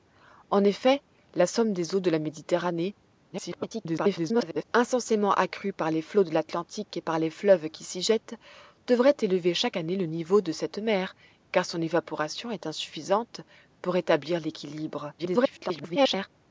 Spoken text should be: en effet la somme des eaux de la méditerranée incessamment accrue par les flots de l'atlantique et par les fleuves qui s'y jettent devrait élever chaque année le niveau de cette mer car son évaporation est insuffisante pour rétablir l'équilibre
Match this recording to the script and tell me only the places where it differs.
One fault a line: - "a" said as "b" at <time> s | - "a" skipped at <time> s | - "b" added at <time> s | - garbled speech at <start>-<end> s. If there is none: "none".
- garbled speech at 3.3-4.6 s
- garbled speech at 15.2-16.3 s